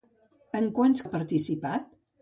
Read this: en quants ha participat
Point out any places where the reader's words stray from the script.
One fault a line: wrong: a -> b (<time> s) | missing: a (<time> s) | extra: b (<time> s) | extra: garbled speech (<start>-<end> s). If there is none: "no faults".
no faults